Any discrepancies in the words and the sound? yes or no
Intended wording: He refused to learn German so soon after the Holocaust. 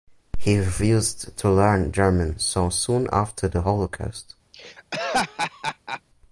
yes